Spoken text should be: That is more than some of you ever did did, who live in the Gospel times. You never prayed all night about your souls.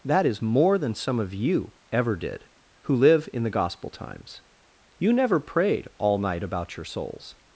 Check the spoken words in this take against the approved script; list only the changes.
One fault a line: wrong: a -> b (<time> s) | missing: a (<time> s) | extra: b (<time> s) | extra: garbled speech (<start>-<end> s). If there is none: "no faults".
missing: did (2.5 s)